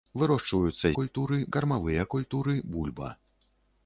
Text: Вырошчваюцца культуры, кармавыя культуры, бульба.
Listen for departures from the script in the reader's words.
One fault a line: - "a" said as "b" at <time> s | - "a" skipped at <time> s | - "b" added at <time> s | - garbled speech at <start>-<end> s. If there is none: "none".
none